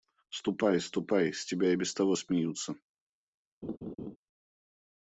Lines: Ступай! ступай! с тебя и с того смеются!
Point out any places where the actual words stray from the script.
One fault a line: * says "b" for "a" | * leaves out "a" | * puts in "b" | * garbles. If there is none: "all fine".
* says "без" for "с"